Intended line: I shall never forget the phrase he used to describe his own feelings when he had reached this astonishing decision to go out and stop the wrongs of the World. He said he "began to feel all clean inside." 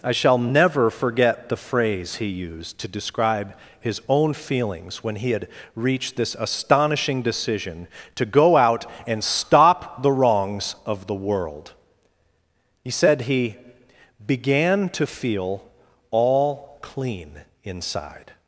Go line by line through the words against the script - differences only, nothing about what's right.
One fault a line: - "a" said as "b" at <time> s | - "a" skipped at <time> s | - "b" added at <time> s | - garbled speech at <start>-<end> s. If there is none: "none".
none